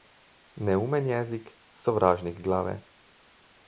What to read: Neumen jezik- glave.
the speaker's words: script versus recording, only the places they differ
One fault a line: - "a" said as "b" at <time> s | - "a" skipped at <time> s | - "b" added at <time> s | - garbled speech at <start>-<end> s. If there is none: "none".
- "sovražnik" added at 1.7 s